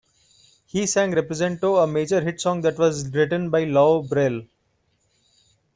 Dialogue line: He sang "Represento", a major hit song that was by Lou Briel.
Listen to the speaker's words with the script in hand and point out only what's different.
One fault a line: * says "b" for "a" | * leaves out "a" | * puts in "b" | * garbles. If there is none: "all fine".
* puts in "written"